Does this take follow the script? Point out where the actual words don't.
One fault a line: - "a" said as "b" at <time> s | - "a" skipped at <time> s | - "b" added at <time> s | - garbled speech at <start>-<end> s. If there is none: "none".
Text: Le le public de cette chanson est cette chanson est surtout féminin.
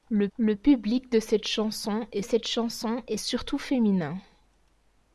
none